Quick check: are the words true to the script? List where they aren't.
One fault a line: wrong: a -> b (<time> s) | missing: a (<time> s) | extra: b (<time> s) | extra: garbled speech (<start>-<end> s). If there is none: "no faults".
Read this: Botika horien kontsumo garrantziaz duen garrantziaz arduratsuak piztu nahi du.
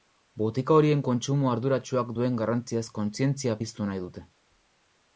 wrong: garrantziaz -> arduratsuak (1.5 s)
wrong: arduratsuak -> kontzientzia (3.0 s)
wrong: du -> dute (4.1 s)